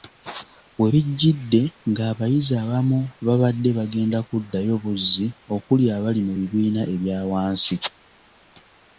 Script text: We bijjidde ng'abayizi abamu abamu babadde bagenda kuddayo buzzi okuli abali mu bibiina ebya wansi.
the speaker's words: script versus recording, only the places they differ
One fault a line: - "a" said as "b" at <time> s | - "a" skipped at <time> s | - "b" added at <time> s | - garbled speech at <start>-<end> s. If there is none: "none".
- "abamu" skipped at 3.0 s